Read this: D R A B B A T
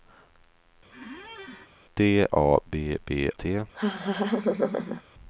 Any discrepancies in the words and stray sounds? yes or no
yes